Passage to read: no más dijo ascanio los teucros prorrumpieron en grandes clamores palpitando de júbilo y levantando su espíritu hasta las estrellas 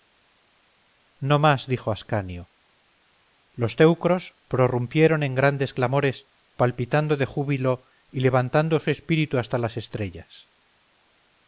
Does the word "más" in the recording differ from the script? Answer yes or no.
no